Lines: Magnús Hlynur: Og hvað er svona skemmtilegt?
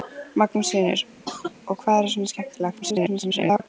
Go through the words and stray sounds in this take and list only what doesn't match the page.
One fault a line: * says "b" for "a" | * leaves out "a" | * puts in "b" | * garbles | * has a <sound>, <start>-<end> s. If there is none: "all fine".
* has a cough, 1.3-1.5 s
* garbles